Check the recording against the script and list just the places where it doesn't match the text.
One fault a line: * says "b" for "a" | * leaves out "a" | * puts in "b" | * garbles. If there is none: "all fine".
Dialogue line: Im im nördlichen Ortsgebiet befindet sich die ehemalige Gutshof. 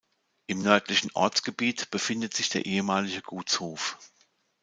* leaves out "im"
* says "der" for "die"